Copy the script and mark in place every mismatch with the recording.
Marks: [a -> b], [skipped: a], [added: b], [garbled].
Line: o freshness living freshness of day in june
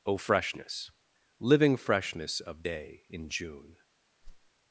o freshness living freshness of day in june